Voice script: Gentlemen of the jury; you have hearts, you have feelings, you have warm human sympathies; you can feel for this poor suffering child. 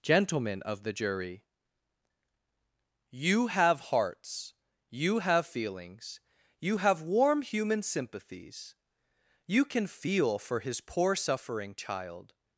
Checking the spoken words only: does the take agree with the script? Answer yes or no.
no